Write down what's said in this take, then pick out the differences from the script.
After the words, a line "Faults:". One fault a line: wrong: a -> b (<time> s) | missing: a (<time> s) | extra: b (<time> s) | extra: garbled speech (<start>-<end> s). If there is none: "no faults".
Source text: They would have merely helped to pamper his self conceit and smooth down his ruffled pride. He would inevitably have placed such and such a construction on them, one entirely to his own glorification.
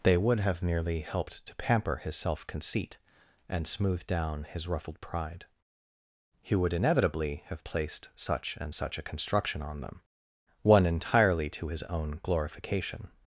They would have merely helped to pamper his self conceit and smooth down his ruffled pride. He would inevitably have placed such and such a construction on them, one entirely to his own glorification.
Faults:
no faults